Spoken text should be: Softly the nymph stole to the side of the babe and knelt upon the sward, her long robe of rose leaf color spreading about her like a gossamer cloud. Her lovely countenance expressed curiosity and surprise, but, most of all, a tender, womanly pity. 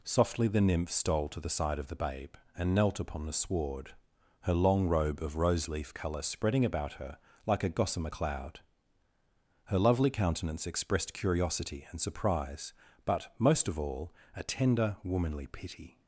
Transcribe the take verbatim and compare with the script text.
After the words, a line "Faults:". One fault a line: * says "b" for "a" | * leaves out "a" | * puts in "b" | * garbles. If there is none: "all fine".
Softly the nymph stole to the side of the babe and knelt upon the sward, her long robe of rose leaf color spreading about her like a gossamer cloud. Her lovely countenance expressed curiosity and surprise, but, most of all, a tender, womanly pity.
Faults:
all fine